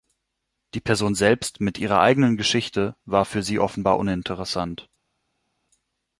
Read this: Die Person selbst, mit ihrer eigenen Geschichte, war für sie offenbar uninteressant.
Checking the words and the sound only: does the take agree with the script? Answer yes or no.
yes